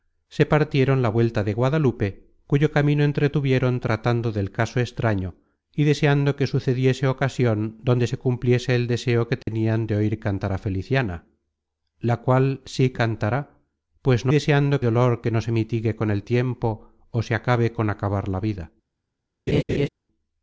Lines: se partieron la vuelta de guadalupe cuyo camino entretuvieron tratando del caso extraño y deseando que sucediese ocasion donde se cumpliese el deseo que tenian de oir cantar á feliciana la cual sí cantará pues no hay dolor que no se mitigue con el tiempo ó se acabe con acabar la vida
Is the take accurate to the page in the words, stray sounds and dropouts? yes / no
no